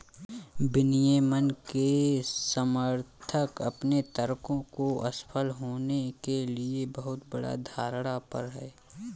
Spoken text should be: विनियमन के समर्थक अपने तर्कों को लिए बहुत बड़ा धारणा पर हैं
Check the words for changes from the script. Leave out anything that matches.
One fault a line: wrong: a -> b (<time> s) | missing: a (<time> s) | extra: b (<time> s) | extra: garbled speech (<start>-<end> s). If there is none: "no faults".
extra: असफल होने के (5.1 s)